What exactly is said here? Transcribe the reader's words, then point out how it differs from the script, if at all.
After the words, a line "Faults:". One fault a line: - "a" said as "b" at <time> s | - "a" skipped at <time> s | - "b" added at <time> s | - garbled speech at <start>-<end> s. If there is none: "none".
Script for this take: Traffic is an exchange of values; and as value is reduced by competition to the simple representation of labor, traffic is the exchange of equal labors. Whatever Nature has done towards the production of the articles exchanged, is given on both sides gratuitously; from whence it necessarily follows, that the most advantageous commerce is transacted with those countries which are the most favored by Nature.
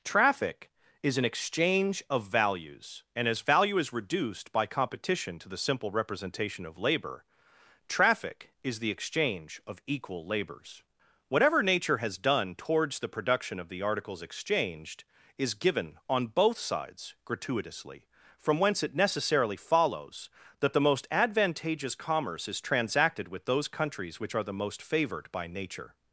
Traffic is an exchange of values; and as value is reduced by competition to the simple representation of labor, traffic is the exchange of equal labors. Whatever Nature has done towards the production of the articles exchanged, is given on both sides gratuitously; from whence it necessarily follows, that the most advantageous commerce is transacted with those countries which are the most favored by Nature.
Faults:
none